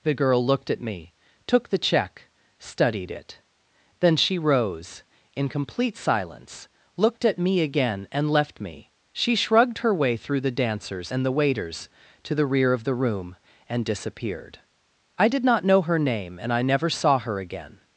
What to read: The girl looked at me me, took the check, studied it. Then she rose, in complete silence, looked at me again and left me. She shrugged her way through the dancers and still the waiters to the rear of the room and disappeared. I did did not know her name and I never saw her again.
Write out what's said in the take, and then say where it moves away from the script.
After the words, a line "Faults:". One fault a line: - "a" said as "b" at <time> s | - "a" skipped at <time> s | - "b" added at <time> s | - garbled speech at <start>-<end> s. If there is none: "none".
The girl looked at me, took the check, studied it. Then she rose, in complete silence, looked at me again and left me. She shrugged her way through the dancers and the waiters to the rear of the room and disappeared. I did not know her name and I never saw her again.
Faults:
- "me" skipped at 1.1 s
- "still" skipped at 11.3 s
- "did" skipped at 15.4 s